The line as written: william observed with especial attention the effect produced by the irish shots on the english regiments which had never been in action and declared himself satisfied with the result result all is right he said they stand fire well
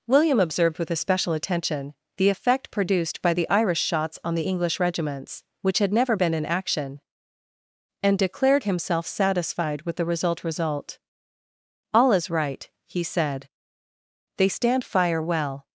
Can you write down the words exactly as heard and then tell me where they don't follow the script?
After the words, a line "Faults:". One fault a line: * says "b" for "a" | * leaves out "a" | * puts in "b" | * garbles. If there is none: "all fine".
william observed with especial attention the effect produced by the irish shots on the english regiments which had never been in action and declared himself satisfied with the result result all is right he said they stand fire well
Faults:
all fine